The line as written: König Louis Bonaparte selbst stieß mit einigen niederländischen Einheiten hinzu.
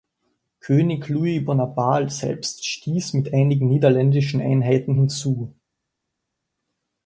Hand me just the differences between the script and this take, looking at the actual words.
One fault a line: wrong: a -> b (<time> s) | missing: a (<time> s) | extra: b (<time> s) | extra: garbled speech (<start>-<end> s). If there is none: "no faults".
no faults